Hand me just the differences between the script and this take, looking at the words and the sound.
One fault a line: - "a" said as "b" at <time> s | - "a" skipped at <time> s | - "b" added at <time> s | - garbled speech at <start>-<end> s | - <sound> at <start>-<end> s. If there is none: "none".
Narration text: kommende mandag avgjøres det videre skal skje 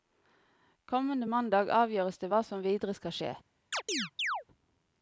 - "hva som" added at 2.3 s
- chirp at 3.7-4.4 s